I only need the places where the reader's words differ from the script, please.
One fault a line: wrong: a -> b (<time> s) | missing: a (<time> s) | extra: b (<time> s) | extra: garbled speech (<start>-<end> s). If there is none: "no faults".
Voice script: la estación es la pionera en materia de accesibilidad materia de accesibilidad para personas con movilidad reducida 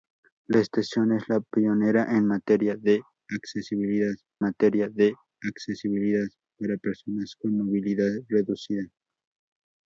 no faults